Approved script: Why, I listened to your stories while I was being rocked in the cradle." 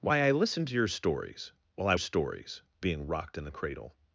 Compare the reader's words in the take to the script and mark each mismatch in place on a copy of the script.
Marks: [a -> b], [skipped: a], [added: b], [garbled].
Why, I listened to your stories while I [was -> stories] being rocked in the cradle."